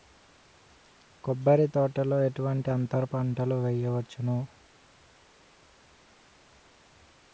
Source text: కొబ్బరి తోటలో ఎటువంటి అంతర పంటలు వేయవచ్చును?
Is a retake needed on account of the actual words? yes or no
no